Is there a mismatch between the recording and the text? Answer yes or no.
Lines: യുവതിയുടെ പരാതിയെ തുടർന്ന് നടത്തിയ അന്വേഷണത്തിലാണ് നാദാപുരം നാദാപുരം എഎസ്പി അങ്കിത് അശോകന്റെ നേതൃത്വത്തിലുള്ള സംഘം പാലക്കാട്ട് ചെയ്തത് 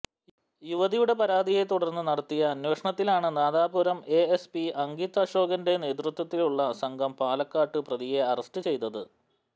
yes